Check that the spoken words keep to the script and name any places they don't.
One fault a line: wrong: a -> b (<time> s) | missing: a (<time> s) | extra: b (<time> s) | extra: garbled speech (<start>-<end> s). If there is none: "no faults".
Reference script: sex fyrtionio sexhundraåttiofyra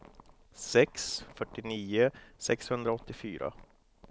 no faults